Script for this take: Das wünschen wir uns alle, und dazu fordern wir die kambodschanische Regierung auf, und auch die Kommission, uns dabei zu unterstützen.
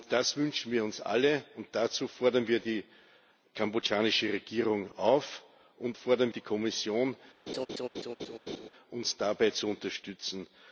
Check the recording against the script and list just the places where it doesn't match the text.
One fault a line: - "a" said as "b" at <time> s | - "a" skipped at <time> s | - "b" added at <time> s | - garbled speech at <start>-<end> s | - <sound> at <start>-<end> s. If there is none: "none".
- "auch" said as "fordern" at 5.9 s
- laugh at 7.5-8.7 s